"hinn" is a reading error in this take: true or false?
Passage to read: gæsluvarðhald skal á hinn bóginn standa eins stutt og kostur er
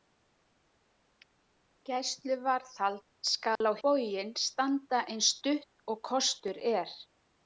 true